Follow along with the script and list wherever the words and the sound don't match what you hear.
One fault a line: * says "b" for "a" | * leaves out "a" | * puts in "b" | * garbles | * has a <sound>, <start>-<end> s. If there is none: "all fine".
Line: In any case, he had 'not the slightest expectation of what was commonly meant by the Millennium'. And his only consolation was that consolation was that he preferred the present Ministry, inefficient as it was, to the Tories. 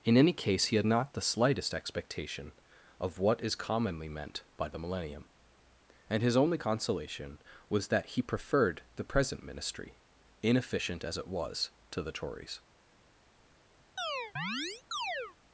* says "is" for "was"
* leaves out "consolation was that"
* has a chirp, 14.0-15.4 s